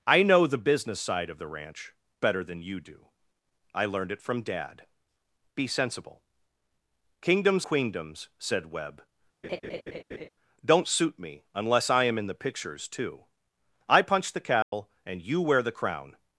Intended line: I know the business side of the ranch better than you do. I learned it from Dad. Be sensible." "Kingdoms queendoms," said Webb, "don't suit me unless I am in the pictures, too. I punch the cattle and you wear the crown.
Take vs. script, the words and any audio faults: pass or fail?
fail